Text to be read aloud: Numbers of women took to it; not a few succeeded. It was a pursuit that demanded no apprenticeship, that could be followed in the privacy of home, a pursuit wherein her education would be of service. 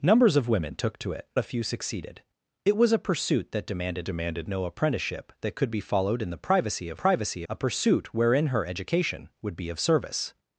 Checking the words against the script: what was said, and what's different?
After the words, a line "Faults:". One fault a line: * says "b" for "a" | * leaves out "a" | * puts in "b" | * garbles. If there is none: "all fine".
Numbers of women took to it; a few succeeded. It was a pursuit that demanded demanded no apprenticeship, that could be followed in the privacy of privacy, a pursuit wherein her education would be of service.
Faults:
* leaves out "not"
* puts in "demanded"
* says "privacy" for "home"